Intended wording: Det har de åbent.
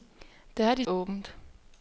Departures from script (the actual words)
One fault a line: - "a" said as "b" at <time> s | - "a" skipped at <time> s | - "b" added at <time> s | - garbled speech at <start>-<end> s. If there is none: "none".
none